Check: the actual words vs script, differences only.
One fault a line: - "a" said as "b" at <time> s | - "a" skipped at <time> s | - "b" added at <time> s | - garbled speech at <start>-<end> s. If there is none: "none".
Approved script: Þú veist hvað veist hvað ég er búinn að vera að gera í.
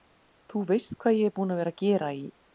- "veist hvað" skipped at 1.2 s